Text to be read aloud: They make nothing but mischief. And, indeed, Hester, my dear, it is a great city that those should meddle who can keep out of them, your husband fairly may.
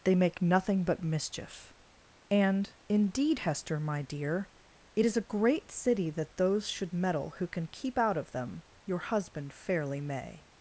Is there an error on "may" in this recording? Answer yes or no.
no